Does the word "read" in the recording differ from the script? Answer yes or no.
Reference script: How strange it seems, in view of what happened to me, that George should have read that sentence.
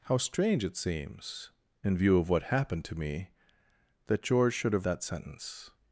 yes